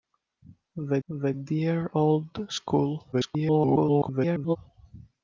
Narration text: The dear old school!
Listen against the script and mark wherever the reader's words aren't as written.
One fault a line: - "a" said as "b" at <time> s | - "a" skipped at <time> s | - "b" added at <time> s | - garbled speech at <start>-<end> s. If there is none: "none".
- "the" added at 1.1 s
- garbled speech at 3.1-4.6 s